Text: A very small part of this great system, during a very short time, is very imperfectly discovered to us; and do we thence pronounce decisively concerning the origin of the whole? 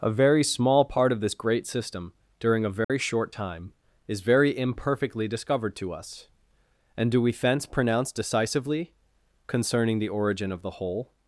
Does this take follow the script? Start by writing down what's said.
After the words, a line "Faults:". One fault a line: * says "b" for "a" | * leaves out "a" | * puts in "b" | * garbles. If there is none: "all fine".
A very small part of this great system, during a very short time, is very imperfectly discovered to us; and do we thence pronounce decisively concerning the origin of the whole?
Faults:
all fine